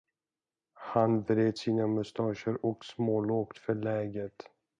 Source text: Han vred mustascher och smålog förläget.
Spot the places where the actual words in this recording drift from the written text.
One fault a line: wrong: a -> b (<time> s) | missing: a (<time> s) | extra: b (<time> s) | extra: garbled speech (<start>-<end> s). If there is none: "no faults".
extra: sina (1.6 s)